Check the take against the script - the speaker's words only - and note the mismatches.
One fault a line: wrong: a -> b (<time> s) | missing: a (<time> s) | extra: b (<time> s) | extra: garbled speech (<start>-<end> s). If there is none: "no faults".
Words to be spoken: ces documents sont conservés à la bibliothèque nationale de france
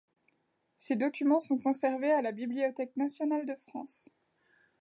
no faults